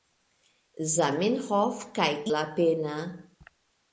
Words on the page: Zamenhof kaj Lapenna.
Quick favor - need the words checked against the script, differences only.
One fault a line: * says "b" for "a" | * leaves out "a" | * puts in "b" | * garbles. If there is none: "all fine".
all fine